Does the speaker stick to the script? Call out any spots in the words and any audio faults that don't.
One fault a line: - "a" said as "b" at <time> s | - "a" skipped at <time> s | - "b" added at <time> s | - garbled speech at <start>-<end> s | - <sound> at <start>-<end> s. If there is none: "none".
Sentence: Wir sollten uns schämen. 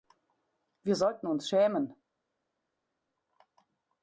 none